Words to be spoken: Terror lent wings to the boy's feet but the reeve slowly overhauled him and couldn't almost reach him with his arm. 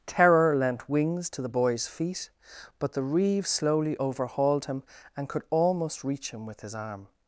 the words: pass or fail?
fail